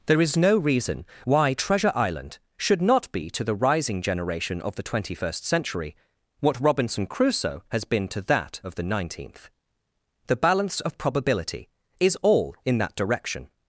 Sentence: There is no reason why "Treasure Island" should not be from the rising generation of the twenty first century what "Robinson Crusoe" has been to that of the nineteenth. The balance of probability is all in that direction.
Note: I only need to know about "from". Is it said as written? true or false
false